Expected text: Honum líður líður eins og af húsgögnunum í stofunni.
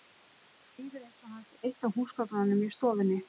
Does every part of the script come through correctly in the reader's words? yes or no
no